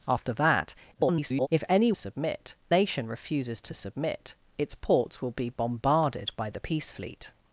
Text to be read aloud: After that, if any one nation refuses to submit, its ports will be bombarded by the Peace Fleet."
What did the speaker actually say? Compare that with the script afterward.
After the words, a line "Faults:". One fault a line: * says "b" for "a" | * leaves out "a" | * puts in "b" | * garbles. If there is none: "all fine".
After that, [garbled] if any submit nation refuses to submit, its ports will be bombarded by the Peace Fleet."
Faults:
* garbles
* says "submit" for "one"